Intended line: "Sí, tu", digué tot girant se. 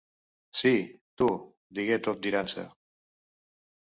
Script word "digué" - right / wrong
right